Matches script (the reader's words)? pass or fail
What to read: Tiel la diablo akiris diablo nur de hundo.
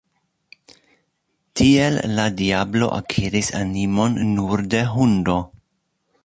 fail